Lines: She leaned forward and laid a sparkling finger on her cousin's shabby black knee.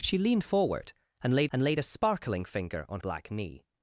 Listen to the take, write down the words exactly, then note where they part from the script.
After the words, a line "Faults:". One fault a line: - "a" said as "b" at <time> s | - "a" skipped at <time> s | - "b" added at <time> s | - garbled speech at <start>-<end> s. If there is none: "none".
She leaned forward and laid and laid a sparkling finger on black knee.
Faults:
- "and laid" added at 1.5 s
- "her cousin's shabby" skipped at 3.0 s